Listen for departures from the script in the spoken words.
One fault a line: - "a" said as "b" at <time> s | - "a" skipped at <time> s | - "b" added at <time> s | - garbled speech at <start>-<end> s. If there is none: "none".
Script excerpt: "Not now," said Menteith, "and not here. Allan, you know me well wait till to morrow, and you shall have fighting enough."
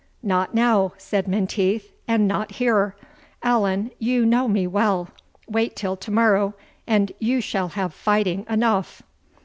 none